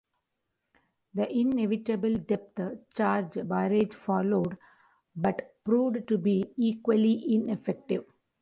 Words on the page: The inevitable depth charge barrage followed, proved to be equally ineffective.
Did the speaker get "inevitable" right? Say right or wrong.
right